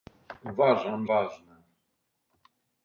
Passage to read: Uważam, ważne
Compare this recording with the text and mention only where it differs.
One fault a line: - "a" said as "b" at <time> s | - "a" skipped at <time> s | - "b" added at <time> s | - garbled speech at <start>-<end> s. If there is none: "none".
none